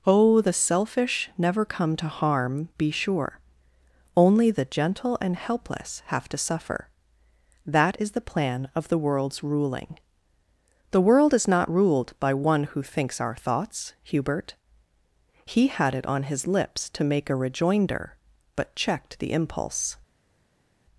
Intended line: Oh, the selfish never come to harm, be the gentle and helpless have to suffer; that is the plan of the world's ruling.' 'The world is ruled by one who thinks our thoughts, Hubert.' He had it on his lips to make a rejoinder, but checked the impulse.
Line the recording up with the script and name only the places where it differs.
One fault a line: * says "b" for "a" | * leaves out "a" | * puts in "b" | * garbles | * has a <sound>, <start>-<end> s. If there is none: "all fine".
* puts in "sure Only"
* puts in "not"